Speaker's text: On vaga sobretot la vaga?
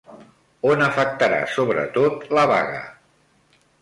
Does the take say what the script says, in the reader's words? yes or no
no